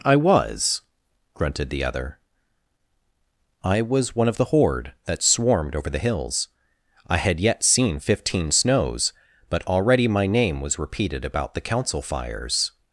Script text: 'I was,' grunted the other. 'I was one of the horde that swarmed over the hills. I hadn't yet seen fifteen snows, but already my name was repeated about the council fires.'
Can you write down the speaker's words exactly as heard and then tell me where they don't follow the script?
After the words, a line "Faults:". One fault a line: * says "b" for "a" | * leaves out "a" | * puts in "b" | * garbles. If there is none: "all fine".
'I was,' grunted the other. 'I was one of the horde that swarmed over the hills. I had yet seen fifteen snows, but already my name was repeated about the council fires.'
Faults:
* says "had" for "hadn't"